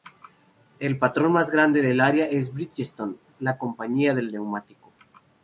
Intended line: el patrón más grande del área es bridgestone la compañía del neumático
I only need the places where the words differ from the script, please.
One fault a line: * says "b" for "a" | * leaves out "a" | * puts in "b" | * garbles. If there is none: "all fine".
all fine